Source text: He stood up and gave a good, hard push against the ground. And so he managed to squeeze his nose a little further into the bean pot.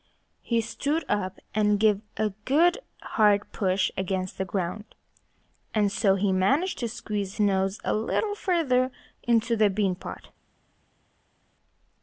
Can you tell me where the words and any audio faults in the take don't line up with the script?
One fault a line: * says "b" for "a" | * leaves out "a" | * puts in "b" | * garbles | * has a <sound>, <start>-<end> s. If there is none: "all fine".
* leaves out "his"